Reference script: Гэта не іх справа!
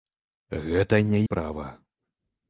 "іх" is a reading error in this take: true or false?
true